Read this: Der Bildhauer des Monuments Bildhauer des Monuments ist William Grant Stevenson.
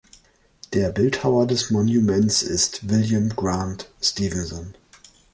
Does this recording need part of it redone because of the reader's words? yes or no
yes